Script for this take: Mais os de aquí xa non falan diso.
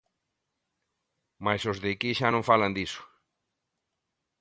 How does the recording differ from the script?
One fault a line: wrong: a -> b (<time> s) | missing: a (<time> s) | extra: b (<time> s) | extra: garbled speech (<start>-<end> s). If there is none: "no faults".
no faults